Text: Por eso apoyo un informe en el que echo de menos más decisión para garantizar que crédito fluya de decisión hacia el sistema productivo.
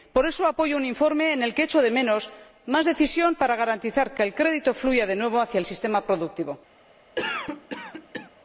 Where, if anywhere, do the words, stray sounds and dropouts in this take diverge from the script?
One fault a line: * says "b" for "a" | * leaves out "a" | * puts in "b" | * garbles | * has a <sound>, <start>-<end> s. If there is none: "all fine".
* puts in "el"
* says "nuevo" for "decisión"
* has a cough, 7.2-8.3 s